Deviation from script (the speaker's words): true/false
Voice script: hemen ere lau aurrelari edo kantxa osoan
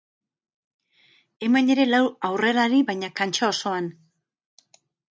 true